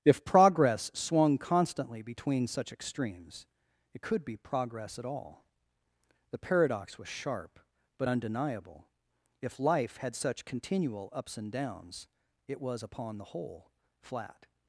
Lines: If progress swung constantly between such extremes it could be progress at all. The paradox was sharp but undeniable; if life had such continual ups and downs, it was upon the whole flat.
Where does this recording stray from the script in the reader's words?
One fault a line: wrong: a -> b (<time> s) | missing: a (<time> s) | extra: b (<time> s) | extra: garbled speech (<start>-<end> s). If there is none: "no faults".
no faults